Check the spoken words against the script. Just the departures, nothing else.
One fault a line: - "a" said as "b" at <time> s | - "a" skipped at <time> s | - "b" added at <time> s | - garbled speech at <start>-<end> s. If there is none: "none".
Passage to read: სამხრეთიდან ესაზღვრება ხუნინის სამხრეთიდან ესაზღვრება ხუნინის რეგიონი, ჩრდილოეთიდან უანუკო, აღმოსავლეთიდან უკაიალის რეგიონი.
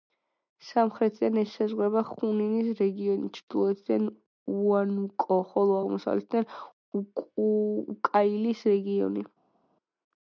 - "სამხრეთიდან ესაზღვრება ხუნინის" skipped at 2.7 s
- "ხოლო" added at 5.5 s